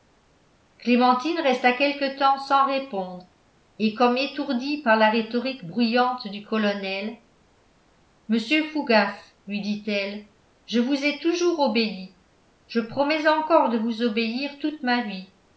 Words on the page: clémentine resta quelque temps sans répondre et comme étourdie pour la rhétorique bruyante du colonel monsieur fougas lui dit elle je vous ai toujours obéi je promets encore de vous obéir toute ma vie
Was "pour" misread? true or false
true